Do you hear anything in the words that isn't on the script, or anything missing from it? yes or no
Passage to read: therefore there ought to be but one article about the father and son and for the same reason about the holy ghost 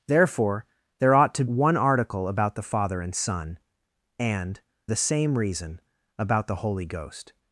yes